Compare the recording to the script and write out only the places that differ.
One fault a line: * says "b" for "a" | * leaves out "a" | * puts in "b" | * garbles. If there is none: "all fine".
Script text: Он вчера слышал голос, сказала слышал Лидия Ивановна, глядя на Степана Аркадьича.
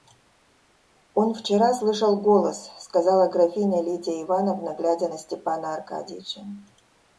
* says "графиня" for "слышал"